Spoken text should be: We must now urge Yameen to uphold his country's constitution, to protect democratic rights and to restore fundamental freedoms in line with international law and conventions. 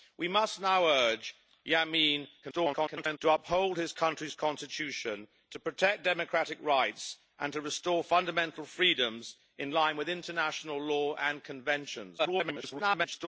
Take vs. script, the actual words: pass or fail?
fail